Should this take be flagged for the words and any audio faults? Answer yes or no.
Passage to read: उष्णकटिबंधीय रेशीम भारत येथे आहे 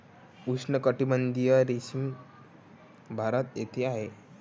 no